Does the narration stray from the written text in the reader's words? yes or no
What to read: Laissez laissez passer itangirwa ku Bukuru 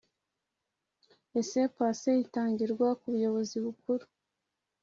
yes